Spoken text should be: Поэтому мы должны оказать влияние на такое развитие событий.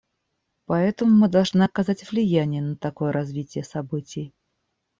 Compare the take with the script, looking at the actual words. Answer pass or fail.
pass